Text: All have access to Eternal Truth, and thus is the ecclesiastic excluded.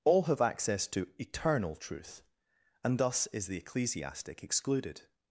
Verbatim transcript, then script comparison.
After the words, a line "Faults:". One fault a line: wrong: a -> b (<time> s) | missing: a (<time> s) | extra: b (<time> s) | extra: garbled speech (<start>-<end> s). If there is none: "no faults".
All have access to Eternal Truth, and thus is the ecclesiastic excluded.
Faults:
no faults